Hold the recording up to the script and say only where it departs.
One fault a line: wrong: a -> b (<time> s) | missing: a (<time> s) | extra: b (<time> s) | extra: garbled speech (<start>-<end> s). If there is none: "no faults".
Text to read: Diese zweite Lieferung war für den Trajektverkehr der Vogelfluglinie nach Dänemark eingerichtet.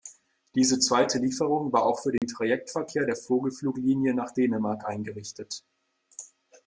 extra: auch (1.9 s)